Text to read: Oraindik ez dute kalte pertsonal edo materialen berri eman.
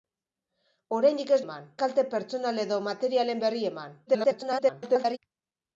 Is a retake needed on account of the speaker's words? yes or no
yes